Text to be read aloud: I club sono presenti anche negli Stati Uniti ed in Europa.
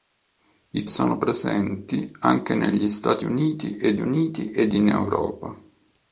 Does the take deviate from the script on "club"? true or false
true